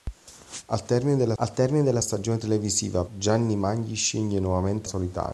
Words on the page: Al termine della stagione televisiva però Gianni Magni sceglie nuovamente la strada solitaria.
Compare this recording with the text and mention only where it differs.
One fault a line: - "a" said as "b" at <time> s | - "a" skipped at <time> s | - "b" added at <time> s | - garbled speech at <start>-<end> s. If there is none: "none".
- "al termine della" added at 1.4 s
- "però" skipped at 3.0 s
- "la strada" skipped at 4.9 s